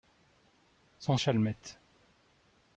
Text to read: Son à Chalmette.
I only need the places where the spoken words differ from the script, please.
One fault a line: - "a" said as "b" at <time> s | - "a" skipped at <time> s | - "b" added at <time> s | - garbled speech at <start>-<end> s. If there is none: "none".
none